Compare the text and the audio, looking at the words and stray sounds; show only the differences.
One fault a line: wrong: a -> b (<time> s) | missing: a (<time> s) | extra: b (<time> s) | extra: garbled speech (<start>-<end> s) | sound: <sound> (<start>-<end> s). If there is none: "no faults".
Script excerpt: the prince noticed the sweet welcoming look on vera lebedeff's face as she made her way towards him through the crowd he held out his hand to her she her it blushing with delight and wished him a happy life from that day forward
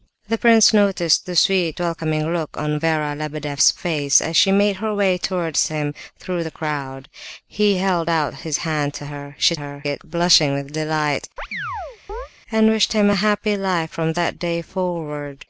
sound: chirp (11.4-12.3 s)